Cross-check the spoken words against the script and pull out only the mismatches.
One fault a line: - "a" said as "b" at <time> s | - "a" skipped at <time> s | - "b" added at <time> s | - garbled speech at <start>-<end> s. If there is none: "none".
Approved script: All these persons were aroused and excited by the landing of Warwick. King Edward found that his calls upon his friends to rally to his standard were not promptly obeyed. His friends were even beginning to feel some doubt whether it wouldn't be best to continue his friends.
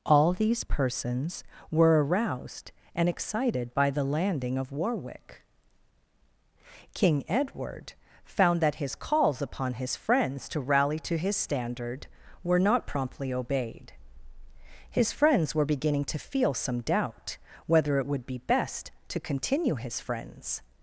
- "even" skipped at 15.7 s
- "wouldn't" said as "would" at 18.0 s